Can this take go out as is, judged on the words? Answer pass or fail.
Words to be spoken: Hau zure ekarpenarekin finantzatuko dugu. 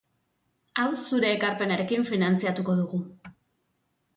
pass